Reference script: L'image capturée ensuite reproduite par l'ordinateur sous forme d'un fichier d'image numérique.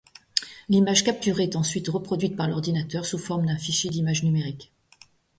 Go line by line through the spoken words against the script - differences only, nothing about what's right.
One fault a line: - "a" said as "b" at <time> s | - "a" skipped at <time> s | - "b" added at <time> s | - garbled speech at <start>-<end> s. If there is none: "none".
- "est" added at 1.4 s